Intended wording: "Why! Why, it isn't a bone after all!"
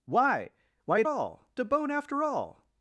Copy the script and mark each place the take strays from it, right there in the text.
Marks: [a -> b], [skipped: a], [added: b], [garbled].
"Why! Why, it [isn't -> all] a bone after all!"